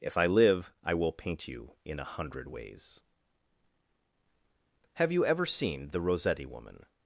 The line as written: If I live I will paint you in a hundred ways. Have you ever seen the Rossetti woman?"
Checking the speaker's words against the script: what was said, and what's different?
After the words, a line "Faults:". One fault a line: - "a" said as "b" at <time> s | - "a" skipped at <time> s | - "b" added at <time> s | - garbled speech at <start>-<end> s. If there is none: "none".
If I live I will paint you in a hundred ways. Have you ever seen the Rossetti woman?"
Faults:
none